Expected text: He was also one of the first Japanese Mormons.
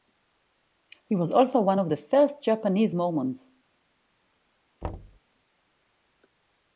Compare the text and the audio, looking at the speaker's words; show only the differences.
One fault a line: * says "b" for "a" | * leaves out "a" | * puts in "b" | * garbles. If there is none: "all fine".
all fine